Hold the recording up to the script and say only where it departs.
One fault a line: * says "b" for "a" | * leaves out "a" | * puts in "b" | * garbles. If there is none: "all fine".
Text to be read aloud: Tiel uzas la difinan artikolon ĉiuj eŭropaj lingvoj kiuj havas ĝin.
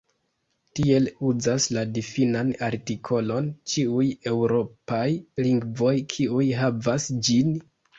all fine